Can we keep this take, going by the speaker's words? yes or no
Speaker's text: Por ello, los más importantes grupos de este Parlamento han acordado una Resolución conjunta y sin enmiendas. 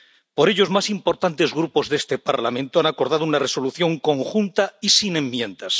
no